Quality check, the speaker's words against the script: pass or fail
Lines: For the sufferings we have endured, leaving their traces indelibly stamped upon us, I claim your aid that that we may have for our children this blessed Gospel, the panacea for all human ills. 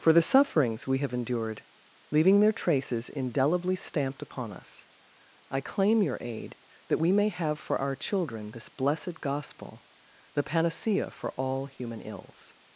fail